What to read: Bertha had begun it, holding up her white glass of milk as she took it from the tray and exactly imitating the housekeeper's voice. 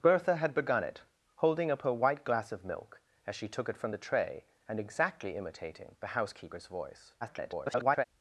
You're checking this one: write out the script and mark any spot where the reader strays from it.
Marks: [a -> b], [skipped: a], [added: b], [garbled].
Bertha had begun it, holding up her white glass of milk as she took it from the tray and exactly imitating the housekeeper's voice. [garbled]